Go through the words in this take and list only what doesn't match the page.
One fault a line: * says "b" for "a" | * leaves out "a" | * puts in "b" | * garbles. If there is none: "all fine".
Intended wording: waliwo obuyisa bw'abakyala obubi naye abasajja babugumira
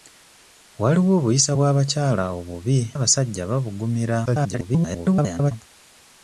* leaves out "naye"
* garbles